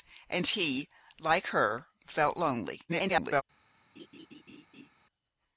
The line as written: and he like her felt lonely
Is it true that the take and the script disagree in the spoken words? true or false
true